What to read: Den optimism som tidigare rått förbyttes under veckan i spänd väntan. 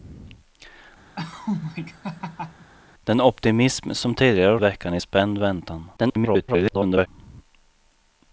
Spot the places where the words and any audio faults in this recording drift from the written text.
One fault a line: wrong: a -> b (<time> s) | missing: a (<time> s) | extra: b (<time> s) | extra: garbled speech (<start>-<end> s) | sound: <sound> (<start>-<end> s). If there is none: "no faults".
sound: laugh (1.2-2.7 s)
missing: rått förbyttes under (4.6 s)
extra: garbled speech (6.0-7.1 s)